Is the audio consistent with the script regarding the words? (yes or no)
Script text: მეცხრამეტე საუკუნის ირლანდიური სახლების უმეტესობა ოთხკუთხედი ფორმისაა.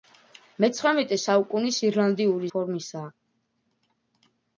no